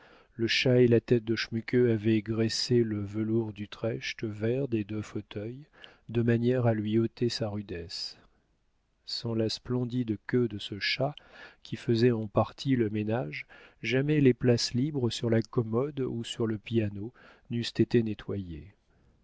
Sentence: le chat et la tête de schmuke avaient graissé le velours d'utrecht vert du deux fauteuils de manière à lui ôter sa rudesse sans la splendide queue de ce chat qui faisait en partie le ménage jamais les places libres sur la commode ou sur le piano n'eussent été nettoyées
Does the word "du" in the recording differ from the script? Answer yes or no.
yes